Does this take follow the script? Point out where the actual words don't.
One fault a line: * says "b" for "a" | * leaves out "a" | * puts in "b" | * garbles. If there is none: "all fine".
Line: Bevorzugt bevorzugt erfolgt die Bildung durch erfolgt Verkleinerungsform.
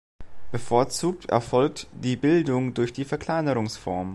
* leaves out "bevorzugt"
* says "die" for "erfolgt"